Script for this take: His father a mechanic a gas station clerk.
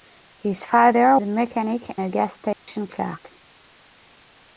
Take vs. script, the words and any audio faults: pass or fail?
fail